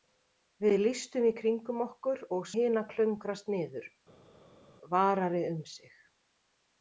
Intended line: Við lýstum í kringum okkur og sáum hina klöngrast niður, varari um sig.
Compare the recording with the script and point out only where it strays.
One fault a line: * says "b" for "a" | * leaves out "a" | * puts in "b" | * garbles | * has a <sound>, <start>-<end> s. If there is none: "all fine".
* leaves out "sáum"